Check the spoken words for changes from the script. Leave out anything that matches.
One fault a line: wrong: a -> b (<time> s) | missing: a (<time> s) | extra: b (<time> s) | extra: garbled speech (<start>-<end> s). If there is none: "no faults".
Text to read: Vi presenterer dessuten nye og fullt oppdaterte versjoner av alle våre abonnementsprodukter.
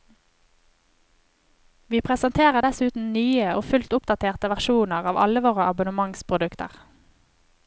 no faults